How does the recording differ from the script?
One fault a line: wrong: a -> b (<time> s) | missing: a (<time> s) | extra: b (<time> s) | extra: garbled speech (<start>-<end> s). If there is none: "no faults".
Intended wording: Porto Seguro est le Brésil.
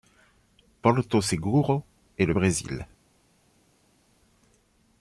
no faults